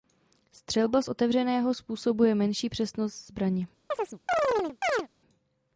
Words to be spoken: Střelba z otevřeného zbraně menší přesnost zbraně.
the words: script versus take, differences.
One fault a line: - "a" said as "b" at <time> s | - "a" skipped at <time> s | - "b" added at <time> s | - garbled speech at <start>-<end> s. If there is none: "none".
- "zbraně" said as "způsobuje" at 1.7 s